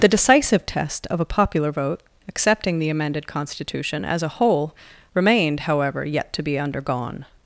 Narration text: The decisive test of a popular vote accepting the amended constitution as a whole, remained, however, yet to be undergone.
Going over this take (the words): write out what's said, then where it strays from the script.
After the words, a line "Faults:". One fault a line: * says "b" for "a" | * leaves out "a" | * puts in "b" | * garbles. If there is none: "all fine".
The decisive test of a popular vote accepting the amended constitution as a whole, remained, however, yet to be undergone.
Faults:
all fine